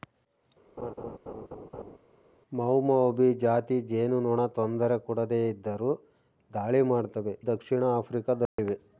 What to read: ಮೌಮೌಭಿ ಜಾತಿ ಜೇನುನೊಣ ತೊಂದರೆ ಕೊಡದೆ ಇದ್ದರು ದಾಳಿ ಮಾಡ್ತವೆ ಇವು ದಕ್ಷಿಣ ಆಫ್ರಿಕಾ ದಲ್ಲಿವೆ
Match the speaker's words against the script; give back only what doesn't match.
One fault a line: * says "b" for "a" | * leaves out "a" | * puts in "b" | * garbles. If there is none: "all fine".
* leaves out "ಇವು"